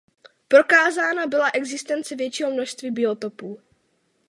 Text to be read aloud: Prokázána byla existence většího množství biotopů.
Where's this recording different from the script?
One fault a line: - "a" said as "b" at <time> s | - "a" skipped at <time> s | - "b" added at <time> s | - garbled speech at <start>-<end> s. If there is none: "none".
none